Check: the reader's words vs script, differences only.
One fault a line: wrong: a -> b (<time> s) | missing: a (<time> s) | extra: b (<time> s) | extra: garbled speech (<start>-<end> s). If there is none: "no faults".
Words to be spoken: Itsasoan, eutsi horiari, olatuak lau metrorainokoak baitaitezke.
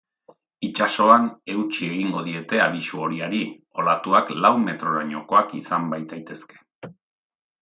extra: egingo diete abisu (1.9 s)
extra: izan (5.6 s)